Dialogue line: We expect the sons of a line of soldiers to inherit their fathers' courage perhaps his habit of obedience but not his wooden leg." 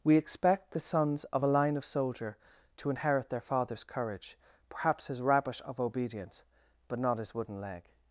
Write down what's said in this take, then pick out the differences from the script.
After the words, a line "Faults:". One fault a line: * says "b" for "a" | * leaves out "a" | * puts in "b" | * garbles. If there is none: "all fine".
We expect the sons of a line of soldier to inherit their fathers' courage perhaps his rabbit of obedience but not his wooden leg."
Faults:
* says "soldier" for "soldiers"
* says "rabbit" for "habit"